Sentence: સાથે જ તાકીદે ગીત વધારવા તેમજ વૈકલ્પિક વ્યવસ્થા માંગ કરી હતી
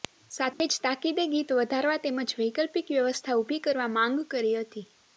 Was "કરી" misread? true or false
false